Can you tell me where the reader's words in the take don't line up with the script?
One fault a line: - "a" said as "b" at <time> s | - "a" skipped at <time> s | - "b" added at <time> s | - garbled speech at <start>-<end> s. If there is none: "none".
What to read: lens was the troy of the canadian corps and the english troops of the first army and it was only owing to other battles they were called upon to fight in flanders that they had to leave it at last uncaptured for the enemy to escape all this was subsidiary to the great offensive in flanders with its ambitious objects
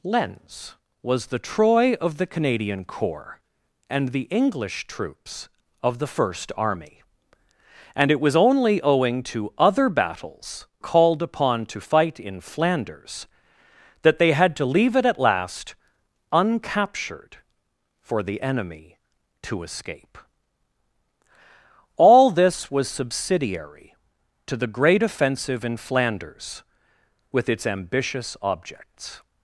- "they were" skipped at 10.7 s